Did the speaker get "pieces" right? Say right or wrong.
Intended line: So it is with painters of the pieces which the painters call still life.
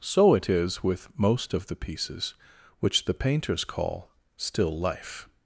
right